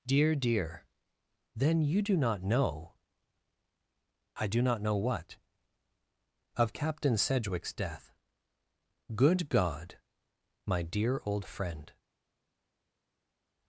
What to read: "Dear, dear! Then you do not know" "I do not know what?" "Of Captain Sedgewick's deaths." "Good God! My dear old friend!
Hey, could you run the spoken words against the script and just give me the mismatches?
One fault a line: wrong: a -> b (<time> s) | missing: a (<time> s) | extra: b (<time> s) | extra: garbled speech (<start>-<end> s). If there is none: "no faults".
wrong: deaths -> death (7.7 s)